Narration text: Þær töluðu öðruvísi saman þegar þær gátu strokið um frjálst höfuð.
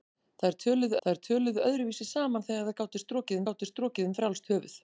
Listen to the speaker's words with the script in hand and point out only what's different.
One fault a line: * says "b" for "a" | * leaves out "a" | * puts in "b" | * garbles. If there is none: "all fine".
* puts in "þær töluðu"
* puts in "gátu strokið"